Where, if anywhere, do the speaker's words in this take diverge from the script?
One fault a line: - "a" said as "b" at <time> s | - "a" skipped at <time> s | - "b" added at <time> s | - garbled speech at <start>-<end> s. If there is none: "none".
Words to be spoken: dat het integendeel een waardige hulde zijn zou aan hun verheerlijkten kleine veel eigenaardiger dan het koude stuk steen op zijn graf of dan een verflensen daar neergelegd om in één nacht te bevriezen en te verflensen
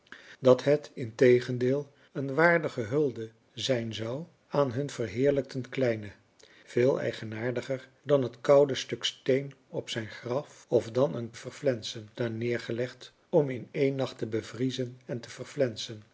none